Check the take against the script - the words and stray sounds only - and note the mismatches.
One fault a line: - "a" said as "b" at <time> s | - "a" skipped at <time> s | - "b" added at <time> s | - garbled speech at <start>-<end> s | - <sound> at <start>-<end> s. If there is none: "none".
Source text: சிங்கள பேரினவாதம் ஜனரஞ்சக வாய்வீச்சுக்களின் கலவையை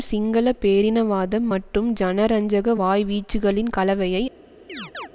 - "மற்றும்" added at 1.5 s
- chirp at 4.7-5.1 s